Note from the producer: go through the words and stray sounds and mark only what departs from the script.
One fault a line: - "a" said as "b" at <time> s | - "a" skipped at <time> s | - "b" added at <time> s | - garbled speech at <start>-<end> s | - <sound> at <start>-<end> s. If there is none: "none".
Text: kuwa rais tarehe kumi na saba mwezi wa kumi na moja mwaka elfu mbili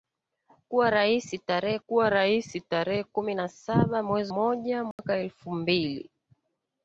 - "kuwa rais tarehe" added at 1.9 s
- "wa kumi na" skipped at 4.3 s
- dropout at 4.9-5.0 s